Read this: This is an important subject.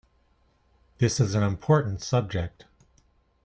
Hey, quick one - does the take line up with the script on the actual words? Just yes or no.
yes